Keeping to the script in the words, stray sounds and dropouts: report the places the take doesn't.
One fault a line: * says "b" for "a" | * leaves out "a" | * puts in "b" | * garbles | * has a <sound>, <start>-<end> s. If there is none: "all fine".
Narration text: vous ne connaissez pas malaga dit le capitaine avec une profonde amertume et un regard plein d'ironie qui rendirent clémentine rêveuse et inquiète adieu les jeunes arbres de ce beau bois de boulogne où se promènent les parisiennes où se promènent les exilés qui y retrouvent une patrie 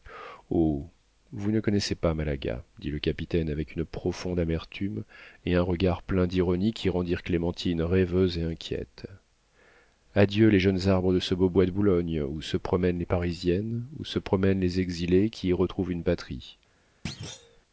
* has a thud, 17.1-17.6 s